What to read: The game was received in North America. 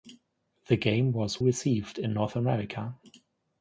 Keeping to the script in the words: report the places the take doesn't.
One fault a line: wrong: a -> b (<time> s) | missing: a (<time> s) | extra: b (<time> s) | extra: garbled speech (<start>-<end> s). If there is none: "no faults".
no faults